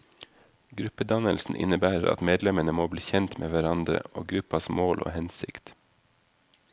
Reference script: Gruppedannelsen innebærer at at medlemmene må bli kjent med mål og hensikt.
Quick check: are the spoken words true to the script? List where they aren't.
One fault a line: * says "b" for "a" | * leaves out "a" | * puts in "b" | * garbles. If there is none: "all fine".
* leaves out "at"
* puts in "hverandre og gruppas"